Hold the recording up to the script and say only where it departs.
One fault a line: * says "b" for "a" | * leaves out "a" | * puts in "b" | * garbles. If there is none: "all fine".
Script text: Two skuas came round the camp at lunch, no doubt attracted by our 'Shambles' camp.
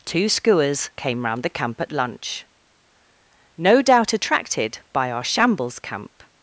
all fine